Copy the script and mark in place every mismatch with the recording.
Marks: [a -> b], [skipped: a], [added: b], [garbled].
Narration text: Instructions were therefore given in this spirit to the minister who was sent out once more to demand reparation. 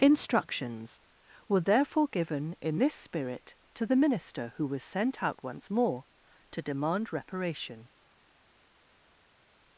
Instructions were therefore given in this spirit to the minister who was sent out once more to demand reparation.